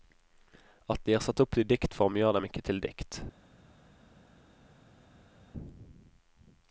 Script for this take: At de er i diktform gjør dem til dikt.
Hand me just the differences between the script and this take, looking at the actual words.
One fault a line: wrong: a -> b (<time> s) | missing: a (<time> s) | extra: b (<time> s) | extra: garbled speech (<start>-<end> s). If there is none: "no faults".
extra: satt opp (1.2 s)
extra: ikke (2.5 s)